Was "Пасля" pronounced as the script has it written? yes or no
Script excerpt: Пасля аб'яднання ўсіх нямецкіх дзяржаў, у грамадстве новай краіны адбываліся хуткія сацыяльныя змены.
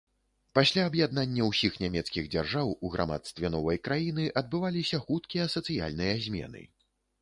yes